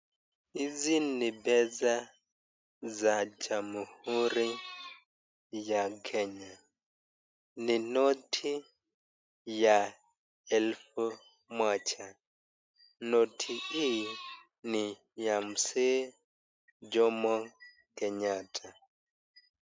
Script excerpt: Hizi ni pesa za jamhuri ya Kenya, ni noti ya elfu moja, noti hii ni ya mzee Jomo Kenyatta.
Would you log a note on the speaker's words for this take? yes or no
no